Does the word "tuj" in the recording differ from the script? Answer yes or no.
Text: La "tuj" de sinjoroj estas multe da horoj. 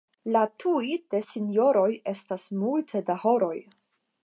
no